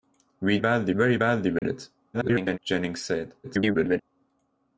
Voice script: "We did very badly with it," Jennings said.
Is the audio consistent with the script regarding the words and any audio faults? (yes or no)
no